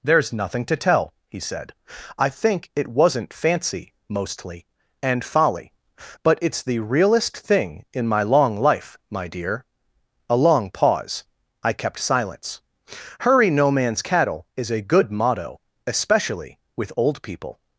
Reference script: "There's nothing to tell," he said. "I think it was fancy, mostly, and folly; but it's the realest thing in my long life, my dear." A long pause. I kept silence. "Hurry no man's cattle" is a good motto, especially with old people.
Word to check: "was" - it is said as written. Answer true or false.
false